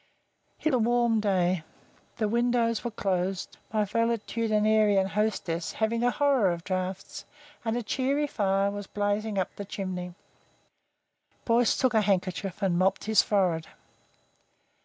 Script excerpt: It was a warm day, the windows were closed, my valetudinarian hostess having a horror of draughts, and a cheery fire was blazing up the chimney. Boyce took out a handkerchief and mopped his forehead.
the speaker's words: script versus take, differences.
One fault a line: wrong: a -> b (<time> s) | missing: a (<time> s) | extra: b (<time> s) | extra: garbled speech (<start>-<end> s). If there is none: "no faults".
missing: was (0.7 s)
missing: out (11.9 s)